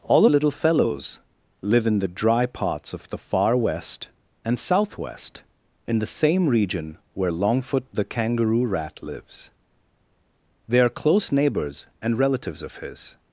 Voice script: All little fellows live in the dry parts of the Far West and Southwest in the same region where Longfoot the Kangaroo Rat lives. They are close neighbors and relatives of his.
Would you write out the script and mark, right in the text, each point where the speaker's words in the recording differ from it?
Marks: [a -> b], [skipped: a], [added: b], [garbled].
All little fellows live in the dry parts of the Far West and Southwest in the same region where Longfoot the Kangaroo Rat lives. They are close neighbors and relatives of his.